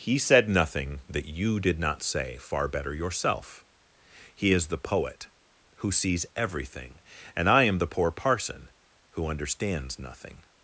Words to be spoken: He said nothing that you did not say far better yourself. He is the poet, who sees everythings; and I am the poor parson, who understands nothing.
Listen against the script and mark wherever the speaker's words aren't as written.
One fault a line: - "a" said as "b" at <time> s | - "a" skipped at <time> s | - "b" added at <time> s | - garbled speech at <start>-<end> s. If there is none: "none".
- "everythings" said as "everything" at 6.3 s